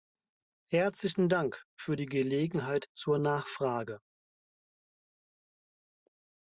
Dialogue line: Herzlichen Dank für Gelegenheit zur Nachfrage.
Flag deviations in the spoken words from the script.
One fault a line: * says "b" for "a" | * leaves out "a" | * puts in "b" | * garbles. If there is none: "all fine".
* puts in "die"